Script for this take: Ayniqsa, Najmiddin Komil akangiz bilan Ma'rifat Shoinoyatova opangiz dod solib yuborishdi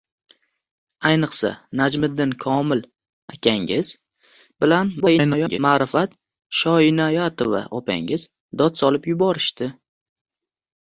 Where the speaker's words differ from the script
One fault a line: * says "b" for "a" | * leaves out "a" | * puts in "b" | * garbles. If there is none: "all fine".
* garbles